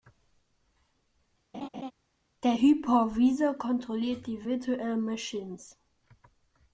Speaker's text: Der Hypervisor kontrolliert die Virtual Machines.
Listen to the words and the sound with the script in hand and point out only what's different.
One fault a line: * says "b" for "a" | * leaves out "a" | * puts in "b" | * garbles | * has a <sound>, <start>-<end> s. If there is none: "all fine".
* has a laugh, 1.5-1.9 s